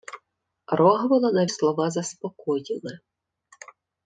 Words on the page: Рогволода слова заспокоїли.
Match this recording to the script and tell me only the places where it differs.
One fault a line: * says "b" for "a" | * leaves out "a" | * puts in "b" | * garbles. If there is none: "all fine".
all fine